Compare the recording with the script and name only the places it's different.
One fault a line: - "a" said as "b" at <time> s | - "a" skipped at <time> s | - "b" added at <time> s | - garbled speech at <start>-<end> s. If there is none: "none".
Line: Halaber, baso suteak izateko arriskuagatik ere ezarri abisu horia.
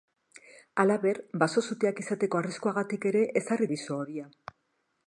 none